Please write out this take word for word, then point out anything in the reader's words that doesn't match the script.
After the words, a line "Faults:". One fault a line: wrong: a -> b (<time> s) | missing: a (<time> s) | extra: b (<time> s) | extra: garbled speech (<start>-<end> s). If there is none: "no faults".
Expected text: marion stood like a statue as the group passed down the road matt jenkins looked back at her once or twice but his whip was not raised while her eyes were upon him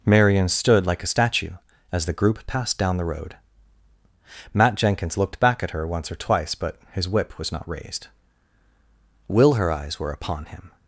marion stood like a statue as the group passed down the road matt jenkins looked back at her once or twice but his whip was not raised will her eyes were upon him
Faults:
wrong: while -> will (9.3 s)